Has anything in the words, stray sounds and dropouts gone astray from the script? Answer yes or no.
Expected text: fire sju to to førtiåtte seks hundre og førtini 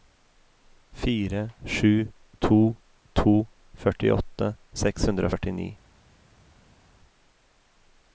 no